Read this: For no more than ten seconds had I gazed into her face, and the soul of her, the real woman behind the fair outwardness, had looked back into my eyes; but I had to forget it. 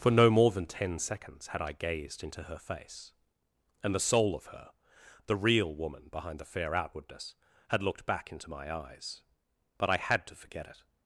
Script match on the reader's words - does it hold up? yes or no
yes